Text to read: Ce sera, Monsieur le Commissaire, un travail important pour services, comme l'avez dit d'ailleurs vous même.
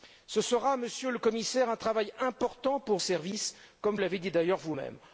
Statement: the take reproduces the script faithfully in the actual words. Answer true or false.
true